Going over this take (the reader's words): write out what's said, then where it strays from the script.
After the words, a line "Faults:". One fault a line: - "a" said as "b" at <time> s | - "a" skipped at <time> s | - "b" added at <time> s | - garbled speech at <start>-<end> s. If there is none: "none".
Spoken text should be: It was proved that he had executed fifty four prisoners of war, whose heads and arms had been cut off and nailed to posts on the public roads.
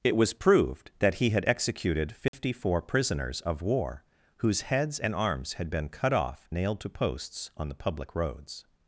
It was proved that he had executed fifty four prisoners of war, whose heads and arms had been cut off nailed to posts on the public roads.
Faults:
- "and" skipped at 6.5 s